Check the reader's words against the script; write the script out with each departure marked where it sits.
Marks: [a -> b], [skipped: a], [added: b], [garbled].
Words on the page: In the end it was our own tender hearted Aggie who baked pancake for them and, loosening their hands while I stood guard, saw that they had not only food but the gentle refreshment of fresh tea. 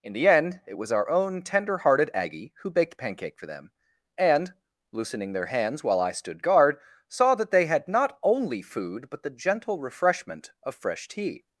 In the end it was our own tender hearted Aggie who baked pancake for them and, loosening their hands while I stood guard, saw that they had not only food but the gentle refreshment of fresh tea.